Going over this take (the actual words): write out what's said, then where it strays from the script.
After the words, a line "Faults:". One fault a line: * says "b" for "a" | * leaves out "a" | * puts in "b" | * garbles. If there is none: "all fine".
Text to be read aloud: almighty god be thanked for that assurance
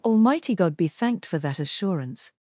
almighty god be thanked for that assurance
Faults:
all fine